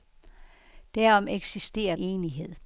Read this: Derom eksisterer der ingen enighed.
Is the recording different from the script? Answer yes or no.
yes